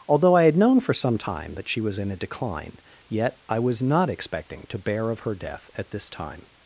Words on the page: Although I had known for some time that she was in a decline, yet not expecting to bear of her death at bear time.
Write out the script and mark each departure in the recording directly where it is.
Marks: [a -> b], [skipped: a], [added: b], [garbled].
Although I had known for some time that she was in a decline, yet [added: I was] not expecting to bear of her death at [bear -> this] time.